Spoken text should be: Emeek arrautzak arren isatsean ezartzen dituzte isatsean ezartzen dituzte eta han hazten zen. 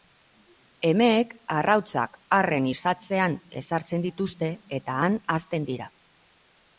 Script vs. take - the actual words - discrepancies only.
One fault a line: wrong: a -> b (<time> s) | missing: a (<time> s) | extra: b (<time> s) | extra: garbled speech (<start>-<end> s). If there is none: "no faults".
missing: isatsean ezartzen dituzte (4.5 s)
wrong: zen -> dira (5.7 s)